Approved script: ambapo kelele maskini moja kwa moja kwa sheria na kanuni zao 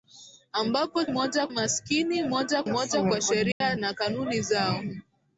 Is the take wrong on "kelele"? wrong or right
wrong